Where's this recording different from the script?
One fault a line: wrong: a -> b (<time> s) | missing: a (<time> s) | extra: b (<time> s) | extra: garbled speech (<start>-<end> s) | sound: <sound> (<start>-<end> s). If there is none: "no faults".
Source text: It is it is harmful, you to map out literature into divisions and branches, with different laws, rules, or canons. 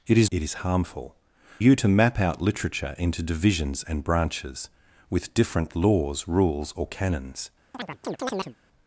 sound: chirp (7.7-8.6 s)